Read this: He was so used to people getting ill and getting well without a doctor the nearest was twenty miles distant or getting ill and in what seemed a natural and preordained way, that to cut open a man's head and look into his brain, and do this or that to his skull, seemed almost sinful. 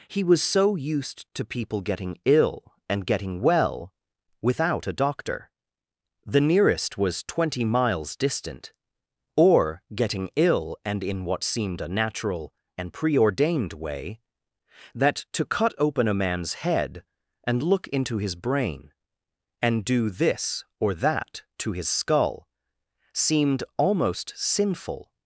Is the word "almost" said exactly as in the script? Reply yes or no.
yes